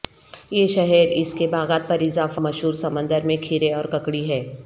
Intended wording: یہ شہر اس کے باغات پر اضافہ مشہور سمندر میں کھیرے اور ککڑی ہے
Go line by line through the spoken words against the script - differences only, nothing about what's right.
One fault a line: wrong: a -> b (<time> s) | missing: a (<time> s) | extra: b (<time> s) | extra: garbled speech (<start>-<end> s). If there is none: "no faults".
no faults